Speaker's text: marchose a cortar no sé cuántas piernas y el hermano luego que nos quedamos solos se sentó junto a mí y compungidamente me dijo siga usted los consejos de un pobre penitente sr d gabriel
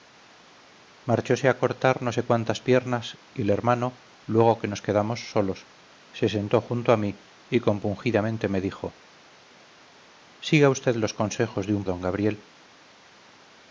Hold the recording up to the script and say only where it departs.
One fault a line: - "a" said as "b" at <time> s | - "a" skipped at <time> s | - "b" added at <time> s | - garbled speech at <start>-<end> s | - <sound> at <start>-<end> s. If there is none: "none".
- "pobre penitente sr" skipped at 11.8 s